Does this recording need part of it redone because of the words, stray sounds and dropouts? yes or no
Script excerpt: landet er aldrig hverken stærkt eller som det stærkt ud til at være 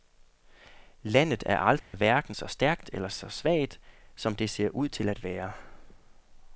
yes